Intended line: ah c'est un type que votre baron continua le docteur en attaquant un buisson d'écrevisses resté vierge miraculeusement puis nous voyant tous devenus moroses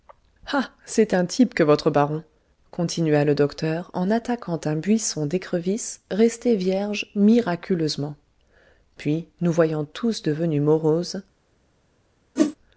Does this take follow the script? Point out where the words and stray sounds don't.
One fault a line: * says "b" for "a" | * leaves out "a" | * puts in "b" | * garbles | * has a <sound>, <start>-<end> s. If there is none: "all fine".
* has a whoosh, 12.4-12.6 s